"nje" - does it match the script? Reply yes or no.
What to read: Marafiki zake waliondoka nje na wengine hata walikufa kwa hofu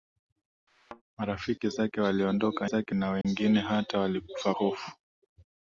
no